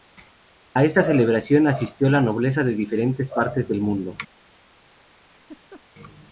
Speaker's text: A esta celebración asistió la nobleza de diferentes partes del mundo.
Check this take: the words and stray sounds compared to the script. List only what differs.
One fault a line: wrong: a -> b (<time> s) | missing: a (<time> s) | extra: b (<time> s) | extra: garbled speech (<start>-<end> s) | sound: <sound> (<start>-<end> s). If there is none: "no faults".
sound: laugh (5.2-5.8 s)